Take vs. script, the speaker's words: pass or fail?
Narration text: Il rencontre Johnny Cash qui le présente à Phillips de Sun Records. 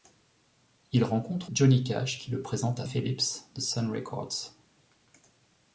pass